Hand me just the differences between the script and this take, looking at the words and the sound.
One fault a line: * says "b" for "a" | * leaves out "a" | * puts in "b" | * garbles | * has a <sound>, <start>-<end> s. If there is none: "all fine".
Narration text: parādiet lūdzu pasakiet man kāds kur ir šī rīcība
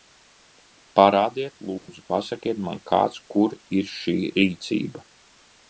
* has a dropout, 1.8-1.9 s